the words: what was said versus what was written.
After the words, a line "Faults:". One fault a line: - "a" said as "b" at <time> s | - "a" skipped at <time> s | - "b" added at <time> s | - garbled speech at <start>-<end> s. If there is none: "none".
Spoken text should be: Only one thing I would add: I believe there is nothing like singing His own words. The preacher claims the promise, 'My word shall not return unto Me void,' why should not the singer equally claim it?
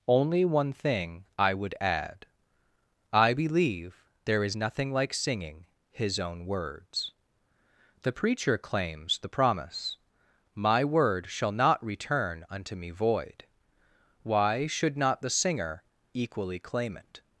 Only one thing I would add: I believe there is nothing like singing His own words. The preacher claims the promise, 'My word shall not return unto Me void,' why should not the singer equally claim it?
Faults:
none